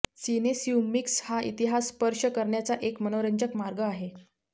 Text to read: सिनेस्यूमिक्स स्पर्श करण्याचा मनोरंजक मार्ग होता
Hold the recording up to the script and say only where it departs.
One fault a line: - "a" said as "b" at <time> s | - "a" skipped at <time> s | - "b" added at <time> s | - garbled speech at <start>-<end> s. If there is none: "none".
- "हा इतिहास" added at 1.2 s
- "एक" added at 2.8 s
- "होता" said as "आहे" at 3.8 s